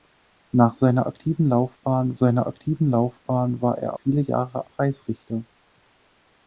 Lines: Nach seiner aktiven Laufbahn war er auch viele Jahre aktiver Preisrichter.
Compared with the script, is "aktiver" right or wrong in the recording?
wrong